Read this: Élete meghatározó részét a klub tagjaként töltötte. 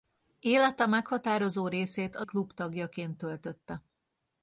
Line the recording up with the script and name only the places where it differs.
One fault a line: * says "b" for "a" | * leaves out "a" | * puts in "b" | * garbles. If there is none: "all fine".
all fine